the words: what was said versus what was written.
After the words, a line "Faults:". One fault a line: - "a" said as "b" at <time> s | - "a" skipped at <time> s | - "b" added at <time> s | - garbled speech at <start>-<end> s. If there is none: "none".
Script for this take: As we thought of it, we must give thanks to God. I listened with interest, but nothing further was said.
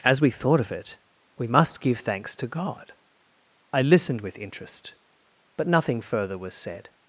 As we thought of it, we must give thanks to God. I listened with interest, but nothing further was said.
Faults:
none